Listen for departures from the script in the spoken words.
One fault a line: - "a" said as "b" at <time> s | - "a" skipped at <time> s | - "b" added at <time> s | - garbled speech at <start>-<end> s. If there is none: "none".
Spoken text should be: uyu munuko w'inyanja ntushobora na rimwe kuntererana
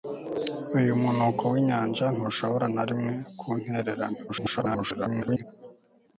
- garbled speech at 4.3-5.4 s